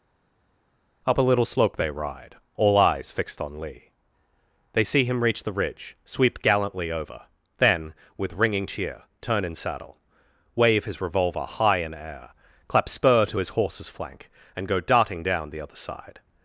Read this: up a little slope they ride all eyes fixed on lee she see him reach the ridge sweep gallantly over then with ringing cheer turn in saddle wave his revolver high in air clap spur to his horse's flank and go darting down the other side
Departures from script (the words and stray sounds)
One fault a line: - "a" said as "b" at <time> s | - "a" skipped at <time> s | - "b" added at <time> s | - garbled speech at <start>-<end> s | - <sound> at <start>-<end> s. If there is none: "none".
- "she" said as "they" at 4.7 s